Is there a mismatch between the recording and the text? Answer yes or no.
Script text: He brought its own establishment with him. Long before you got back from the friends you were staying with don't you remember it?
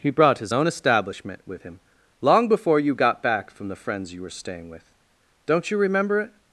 yes